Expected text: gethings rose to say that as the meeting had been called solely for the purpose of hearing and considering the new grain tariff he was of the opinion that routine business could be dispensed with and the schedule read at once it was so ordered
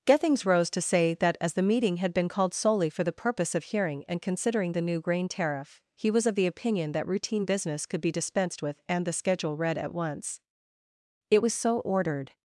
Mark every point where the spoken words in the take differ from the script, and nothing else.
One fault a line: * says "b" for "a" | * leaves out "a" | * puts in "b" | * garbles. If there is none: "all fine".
all fine